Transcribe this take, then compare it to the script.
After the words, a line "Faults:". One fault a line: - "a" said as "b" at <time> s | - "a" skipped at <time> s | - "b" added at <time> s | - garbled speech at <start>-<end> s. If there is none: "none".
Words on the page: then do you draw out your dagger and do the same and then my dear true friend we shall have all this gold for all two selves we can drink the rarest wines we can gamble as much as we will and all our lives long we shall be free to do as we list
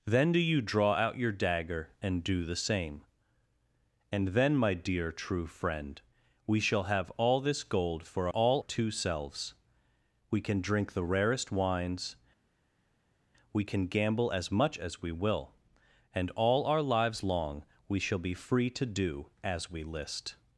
then do you draw out your dagger and do the same and then my dear true friend we shall have all this gold for all two selves we can drink the rarest wines we can gamble as much as we will and all our lives long we shall be free to do as we list
Faults:
none